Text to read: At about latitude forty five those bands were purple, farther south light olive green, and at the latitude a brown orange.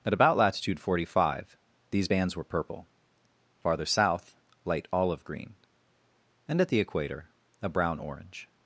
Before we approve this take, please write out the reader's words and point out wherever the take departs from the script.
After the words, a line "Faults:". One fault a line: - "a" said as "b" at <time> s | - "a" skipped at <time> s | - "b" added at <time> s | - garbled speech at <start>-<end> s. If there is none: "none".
At about latitude forty five these bands were purple, farther south light olive green, and at the equator a brown orange.
Faults:
- "those" said as "these" at 1.9 s
- "latitude" said as "equator" at 6.8 s